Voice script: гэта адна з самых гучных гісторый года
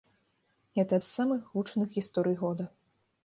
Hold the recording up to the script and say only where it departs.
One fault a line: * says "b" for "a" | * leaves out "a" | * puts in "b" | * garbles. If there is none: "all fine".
* leaves out "адна"